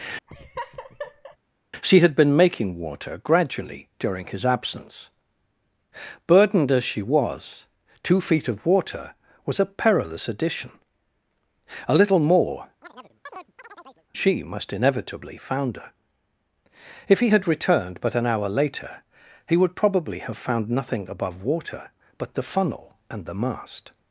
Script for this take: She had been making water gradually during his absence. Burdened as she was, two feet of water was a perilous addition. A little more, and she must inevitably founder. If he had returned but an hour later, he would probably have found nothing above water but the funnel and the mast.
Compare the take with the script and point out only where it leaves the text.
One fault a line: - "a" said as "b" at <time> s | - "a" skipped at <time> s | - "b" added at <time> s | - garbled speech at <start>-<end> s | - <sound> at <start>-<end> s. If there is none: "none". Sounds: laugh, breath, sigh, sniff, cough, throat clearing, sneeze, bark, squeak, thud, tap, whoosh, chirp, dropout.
- laugh at 0.3-1.4 s
- "and" skipped at 12.7 s
- chirp at 12.8-14.1 s